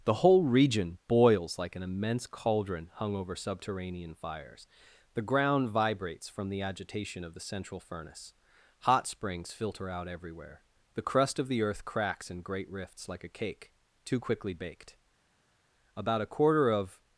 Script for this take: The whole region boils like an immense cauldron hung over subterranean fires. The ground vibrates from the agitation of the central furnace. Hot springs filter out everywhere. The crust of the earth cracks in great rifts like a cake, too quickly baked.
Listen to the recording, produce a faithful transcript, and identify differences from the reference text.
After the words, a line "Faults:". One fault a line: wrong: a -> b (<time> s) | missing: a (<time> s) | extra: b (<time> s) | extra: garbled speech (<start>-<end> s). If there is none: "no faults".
The whole region boils like an immense cauldron hung over subterranean fires. The ground vibrates from the agitation of the central furnace. Hot springs filter out everywhere. The crust of the earth cracks in great rifts like a cake, too quickly baked. About a quarter of
Faults:
extra: About a quarter of (16.0 s)